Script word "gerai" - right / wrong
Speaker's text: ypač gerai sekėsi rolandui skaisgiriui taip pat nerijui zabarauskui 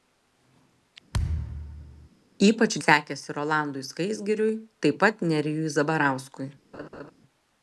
wrong